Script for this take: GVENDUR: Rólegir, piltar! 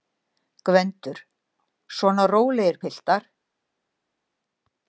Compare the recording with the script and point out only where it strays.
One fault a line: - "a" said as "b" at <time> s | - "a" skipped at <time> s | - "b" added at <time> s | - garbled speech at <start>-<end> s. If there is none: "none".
- "Svona" added at 2.0 s